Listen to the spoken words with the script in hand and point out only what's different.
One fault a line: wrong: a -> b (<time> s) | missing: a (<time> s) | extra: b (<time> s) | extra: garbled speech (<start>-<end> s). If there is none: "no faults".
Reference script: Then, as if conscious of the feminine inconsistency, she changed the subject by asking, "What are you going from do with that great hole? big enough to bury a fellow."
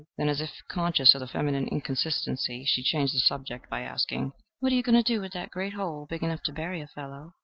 wrong: from -> to (5.0 s)